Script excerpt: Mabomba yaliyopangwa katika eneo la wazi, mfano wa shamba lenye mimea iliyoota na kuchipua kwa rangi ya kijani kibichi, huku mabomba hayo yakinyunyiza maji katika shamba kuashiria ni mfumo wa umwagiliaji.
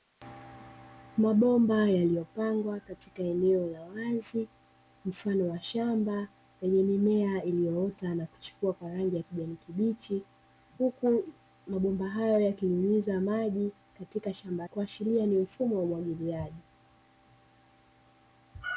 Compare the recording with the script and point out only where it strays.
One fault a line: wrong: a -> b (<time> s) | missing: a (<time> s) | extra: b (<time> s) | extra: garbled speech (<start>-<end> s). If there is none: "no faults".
no faults